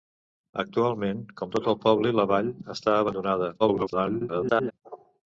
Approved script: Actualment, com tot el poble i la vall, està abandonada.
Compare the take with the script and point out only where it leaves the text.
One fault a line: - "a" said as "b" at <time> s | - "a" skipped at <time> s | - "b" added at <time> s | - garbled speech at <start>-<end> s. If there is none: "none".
- garbled speech at 3.6-4.7 s